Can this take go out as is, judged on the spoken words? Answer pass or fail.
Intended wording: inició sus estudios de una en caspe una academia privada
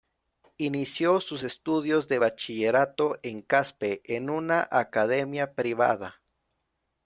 fail